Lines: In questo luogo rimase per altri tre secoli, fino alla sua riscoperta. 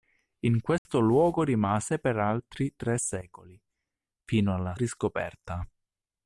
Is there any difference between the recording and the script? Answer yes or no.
yes